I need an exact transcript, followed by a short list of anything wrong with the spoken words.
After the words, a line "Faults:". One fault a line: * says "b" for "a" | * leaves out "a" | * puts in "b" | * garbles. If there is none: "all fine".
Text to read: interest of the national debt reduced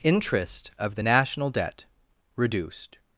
interest of the national debt reduced
Faults:
all fine